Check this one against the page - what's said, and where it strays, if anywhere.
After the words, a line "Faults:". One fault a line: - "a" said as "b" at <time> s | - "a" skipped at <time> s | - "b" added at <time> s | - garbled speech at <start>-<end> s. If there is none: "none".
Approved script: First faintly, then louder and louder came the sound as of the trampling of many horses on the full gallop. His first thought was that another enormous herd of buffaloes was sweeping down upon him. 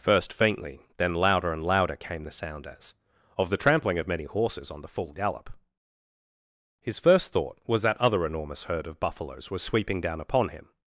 First faintly, then louder and louder came the sound as of the trampling of many horses on the full gallop. His first thought was that other enormous herd of buffaloes was sweeping down upon him.
Faults:
- "another" said as "other" at 8.0 s